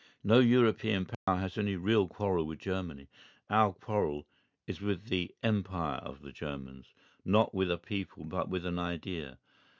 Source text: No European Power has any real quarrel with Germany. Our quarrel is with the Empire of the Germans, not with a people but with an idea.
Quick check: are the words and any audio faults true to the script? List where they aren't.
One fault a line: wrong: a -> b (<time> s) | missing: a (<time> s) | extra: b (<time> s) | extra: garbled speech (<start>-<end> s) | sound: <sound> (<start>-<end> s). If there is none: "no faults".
sound: dropout (1.1-1.3 s)